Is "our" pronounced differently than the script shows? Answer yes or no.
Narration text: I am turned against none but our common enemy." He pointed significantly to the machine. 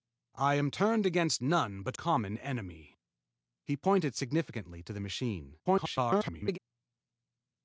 yes